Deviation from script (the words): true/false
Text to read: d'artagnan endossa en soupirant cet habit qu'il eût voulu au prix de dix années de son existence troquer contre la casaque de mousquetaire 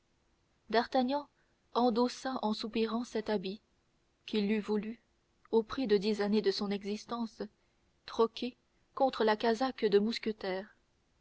false